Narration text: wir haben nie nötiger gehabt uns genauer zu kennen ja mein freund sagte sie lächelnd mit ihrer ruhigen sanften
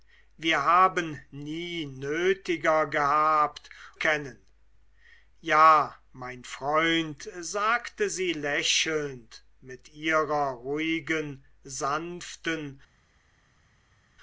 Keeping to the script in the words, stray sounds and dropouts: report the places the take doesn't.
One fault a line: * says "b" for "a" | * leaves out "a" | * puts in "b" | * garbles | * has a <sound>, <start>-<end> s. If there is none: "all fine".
* leaves out "uns genauer zu"